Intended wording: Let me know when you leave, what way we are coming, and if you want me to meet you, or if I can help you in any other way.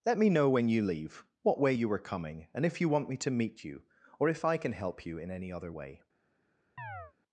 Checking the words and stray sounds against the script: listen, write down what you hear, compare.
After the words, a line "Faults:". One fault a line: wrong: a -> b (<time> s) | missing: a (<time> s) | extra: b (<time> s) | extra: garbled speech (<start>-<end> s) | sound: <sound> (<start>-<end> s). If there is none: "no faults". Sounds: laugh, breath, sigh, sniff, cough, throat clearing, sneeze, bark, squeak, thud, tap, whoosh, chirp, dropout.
Let me know when you leave, what way you are coming, and if you want me to meet you, or if I can help you in any other way.
Faults:
wrong: we -> you (1.7 s)
sound: chirp (6.8-7.1 s)